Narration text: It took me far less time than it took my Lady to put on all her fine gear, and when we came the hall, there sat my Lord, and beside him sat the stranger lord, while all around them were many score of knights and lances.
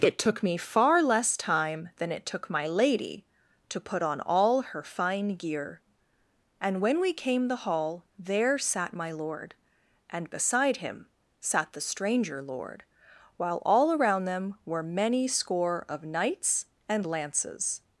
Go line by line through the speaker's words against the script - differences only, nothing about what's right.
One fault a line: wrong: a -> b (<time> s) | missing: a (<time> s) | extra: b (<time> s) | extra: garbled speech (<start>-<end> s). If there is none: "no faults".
no faults